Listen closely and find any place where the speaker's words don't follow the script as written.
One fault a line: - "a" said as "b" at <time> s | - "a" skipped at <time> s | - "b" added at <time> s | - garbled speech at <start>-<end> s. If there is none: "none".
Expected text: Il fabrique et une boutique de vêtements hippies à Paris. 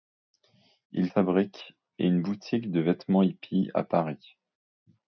none